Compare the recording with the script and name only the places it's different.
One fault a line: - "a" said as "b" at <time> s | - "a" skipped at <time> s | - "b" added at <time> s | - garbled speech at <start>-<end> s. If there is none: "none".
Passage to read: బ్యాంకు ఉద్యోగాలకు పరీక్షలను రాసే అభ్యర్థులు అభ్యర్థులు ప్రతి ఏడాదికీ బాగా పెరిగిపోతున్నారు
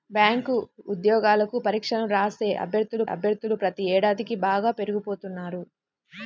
none